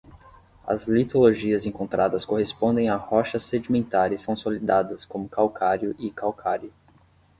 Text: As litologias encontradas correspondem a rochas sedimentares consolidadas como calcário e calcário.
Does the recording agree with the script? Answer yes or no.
yes